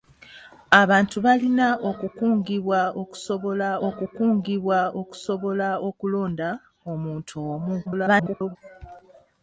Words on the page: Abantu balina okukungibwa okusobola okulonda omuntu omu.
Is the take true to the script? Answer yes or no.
no